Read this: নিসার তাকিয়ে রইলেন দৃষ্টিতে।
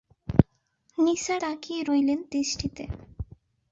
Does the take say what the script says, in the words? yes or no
yes